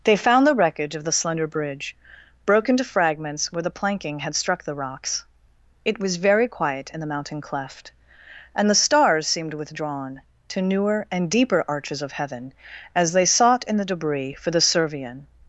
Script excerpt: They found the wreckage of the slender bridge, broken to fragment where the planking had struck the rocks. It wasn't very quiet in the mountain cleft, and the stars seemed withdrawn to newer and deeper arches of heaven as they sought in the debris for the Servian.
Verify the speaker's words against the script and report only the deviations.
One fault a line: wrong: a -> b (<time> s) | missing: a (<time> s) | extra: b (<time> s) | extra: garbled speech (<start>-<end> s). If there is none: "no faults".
wrong: fragment -> fragments (2.8 s)
wrong: wasn't -> was (6.0 s)